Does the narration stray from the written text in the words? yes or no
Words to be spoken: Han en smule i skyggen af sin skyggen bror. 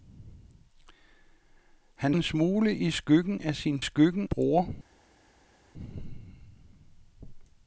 no